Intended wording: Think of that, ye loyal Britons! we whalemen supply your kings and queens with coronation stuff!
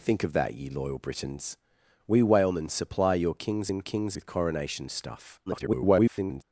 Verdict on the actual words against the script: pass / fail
fail